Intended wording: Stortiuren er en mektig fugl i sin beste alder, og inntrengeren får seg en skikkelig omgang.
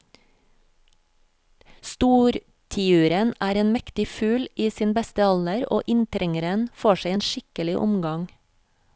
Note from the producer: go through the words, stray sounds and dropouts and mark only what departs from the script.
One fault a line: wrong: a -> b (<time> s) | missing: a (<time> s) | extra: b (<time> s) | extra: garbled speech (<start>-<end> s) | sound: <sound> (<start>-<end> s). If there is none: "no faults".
no faults